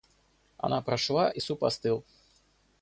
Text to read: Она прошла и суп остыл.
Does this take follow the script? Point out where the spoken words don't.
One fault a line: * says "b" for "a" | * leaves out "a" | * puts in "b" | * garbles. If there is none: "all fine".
all fine